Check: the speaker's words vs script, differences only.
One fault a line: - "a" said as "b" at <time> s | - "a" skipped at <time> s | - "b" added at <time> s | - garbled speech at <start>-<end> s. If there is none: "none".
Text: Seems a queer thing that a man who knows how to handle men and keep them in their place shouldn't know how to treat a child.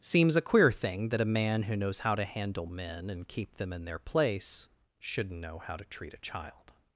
none